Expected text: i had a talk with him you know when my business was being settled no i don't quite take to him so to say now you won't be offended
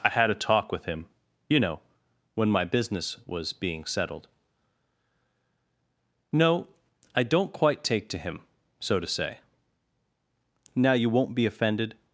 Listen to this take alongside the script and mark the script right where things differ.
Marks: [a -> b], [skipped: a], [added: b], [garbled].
i had a talk with him you know when my business was being settled no i don't quite take to him so to say now you won't be offended